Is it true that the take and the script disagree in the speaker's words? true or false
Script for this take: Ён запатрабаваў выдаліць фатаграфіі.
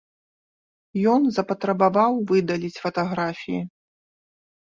false